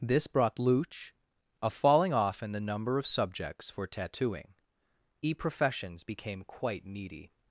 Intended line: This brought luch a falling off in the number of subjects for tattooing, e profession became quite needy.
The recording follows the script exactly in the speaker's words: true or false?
false